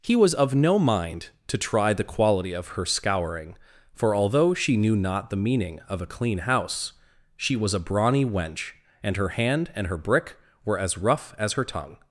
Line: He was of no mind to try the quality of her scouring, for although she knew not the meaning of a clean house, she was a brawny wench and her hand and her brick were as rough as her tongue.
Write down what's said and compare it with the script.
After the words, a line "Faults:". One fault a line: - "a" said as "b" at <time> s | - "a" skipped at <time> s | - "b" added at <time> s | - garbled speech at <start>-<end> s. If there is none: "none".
He was of no mind to try the quality of her scouring, for although she knew not the meaning of a clean house, she was a brawny wench and her hand and her brick were as rough as her tongue.
Faults:
none